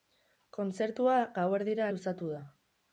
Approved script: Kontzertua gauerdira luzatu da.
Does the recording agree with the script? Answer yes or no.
yes